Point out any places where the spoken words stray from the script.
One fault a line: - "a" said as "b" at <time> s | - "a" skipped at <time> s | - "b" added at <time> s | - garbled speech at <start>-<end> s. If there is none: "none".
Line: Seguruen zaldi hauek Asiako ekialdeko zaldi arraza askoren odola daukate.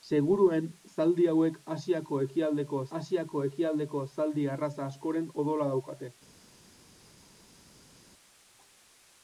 - "Asiako ekialdeko" added at 3.0 s